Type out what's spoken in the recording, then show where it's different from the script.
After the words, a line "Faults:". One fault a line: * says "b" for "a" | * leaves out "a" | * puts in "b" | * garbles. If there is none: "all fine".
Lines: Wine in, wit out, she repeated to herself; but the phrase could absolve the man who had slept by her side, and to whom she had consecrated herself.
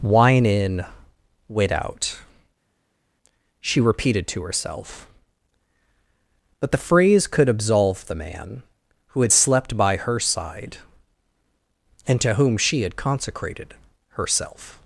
Wine in, wit out, she repeated to herself; but the phrase could absolve the man who had slept by her side, and to whom she had consecrated herself.
Faults:
all fine